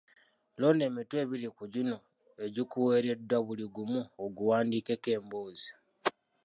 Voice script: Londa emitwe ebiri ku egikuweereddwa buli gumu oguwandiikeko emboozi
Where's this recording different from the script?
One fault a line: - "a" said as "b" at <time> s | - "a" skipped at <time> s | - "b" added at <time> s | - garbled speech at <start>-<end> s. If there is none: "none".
- "gino" added at 1.7 s